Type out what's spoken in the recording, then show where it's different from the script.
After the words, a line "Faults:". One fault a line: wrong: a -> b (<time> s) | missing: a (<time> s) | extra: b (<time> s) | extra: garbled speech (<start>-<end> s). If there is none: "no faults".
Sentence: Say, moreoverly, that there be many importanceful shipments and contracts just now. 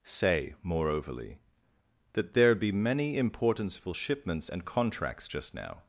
Say, moreoverly, that there be many importanceful shipments and contracts just now.
Faults:
no faults